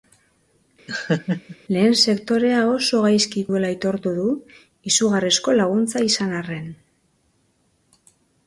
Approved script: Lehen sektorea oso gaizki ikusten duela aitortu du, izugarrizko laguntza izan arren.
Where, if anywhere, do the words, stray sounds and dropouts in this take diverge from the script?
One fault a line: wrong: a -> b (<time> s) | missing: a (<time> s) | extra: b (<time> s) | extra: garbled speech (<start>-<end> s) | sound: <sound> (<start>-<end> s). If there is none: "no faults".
sound: laugh (0.9-1.6 s)
missing: ikusten (3.4 s)